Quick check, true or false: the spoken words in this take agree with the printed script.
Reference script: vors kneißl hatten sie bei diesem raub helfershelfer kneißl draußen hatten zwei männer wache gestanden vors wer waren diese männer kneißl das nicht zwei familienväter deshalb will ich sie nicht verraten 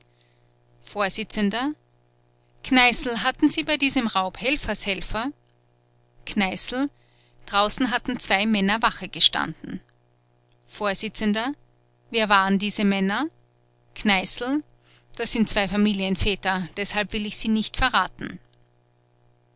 false